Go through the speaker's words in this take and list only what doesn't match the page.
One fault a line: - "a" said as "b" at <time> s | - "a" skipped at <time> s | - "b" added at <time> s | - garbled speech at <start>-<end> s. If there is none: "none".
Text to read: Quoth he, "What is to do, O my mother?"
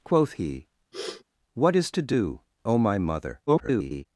- garbled speech at 3.5-4.1 s